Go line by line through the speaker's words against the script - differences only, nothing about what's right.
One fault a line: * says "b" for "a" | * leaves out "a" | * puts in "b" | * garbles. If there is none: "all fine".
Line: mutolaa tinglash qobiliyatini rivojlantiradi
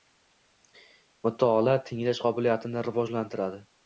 all fine